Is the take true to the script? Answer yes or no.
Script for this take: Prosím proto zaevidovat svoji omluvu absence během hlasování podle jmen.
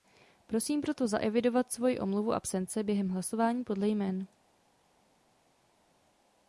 yes